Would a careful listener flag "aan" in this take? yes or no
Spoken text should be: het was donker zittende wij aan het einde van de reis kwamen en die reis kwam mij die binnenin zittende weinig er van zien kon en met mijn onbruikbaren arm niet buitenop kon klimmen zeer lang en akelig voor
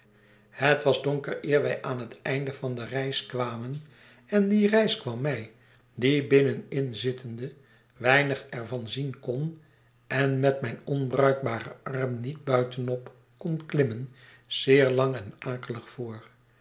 no